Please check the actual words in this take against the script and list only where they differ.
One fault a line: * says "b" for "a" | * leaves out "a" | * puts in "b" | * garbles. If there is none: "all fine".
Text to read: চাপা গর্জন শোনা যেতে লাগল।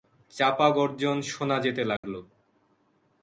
all fine